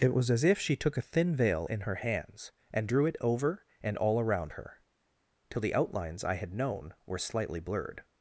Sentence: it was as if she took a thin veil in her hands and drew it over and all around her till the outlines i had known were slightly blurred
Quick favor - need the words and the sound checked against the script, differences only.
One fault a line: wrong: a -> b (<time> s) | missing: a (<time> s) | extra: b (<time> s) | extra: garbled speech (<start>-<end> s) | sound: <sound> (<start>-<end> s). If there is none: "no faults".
no faults